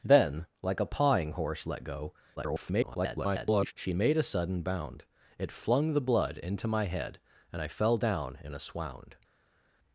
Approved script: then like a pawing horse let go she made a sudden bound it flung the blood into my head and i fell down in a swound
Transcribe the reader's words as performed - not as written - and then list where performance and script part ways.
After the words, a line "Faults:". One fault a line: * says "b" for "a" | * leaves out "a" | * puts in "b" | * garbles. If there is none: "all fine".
then like a pawing horse let go [garbled] she made a sudden bound it flung the blood into my head and i fell down in a swound
Faults:
* garbles